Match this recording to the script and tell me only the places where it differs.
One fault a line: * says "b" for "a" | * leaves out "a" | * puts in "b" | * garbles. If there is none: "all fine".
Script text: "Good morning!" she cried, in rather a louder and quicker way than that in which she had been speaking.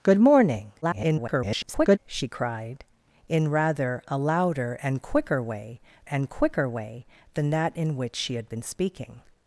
* garbles
* puts in "and quicker way"